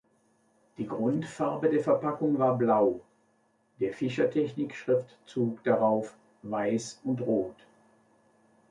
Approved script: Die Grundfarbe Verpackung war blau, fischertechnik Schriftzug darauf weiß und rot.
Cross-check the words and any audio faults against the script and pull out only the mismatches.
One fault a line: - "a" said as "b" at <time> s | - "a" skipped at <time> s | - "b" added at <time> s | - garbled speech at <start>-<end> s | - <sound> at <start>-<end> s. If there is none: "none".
- "der" added at 1.7 s
- "der" added at 3.8 s